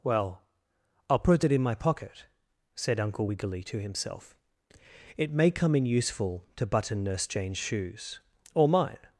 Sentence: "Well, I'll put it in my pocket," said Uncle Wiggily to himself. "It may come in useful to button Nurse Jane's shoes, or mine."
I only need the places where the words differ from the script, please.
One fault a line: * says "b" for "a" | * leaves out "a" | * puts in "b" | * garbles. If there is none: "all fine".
all fine